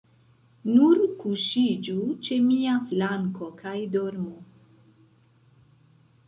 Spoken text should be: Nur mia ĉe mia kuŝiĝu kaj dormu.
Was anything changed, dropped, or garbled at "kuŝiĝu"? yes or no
yes